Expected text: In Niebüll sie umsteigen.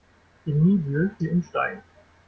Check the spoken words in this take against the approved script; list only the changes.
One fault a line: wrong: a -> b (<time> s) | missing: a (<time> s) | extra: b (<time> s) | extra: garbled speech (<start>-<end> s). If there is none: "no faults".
no faults